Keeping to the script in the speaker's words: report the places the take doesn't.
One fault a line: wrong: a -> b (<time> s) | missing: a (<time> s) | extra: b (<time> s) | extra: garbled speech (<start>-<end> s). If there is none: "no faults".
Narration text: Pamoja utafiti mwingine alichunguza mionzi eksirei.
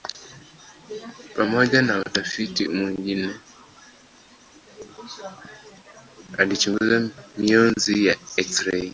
extra: na (1.8 s)
extra: ya (8.1 s)